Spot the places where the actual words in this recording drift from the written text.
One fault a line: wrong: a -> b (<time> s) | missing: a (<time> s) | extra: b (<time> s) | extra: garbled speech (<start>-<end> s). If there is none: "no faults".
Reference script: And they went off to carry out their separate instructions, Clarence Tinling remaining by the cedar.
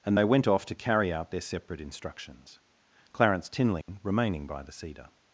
no faults